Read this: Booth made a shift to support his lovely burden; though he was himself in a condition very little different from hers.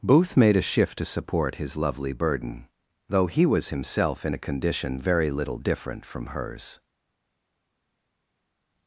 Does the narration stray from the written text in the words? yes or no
no